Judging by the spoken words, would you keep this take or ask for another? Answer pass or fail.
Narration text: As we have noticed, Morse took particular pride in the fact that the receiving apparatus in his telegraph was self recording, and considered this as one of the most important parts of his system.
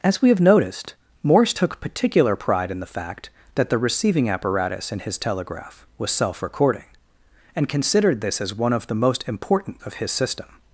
fail